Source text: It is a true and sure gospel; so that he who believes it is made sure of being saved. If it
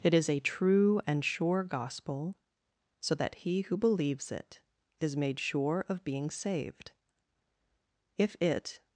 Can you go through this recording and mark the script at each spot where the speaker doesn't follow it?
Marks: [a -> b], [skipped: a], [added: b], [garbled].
It is a true and sure gospel; so that he who believes it is made sure of being saved. If it